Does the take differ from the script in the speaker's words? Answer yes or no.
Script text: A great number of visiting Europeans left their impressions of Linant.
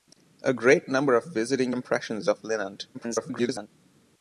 yes